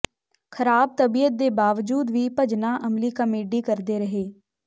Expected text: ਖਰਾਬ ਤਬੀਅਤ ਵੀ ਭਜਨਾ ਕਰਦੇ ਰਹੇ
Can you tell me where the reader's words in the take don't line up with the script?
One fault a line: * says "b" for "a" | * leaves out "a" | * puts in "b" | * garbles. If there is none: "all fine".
* puts in "ਦੇ ਬਾਵਜੂਦ"
* puts in "ਅਮਲੀ ਕਾਮੇਡੀ"